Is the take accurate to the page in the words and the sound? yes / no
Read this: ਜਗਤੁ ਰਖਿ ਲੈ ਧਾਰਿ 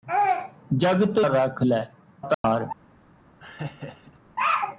no